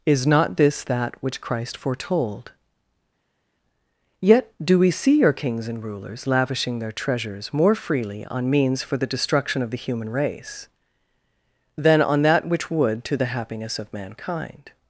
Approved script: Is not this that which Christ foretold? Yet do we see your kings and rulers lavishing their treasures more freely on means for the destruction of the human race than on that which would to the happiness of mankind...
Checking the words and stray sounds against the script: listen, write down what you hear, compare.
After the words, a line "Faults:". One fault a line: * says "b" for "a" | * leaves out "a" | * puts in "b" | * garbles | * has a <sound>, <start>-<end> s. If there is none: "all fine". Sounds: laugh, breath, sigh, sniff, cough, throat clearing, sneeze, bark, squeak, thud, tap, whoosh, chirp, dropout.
Is not this that which Christ foretold? Yet do we see your kings and rulers lavishing their treasures more freely on means for the destruction of the human race than on that which would to the happiness of mankind...
Faults:
all fine